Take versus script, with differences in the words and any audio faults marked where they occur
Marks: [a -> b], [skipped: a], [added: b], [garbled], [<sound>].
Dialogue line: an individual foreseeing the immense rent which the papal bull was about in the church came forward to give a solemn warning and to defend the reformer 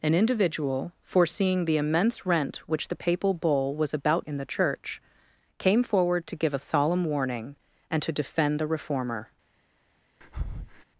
an individual foreseeing the immense rent which the papal bull was about in the church came forward to give a solemn warning and to defend the reformer [breath]